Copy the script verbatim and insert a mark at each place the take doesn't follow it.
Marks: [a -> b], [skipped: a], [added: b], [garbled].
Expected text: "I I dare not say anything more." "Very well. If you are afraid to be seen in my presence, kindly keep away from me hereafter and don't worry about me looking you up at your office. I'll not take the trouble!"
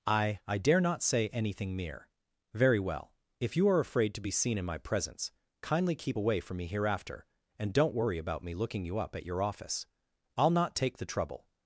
"I I dare not say anything [more." -> mere] "Very well. If you are afraid to be seen in my presence, kindly keep away from me hereafter and don't worry about me looking you up at your office. I'll not take the trouble!"